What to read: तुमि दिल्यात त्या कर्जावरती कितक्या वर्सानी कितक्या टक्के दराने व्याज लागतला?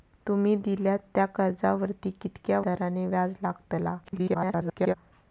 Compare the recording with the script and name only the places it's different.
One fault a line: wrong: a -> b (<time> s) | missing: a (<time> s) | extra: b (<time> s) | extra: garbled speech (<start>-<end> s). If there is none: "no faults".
missing: वर्सानी कितक्या टक्के (2.6 s)
extra: garbled speech (4.0-4.9 s)